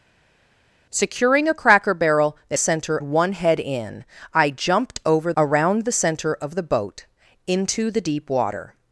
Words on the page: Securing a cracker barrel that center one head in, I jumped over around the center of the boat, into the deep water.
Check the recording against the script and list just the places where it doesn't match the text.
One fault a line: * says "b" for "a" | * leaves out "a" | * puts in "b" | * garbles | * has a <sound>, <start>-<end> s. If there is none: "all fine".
all fine